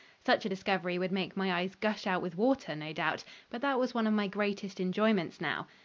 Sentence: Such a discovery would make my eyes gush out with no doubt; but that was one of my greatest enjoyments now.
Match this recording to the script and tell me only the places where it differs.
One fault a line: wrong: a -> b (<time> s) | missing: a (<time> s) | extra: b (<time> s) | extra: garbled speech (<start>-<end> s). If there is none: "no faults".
extra: water (2.4 s)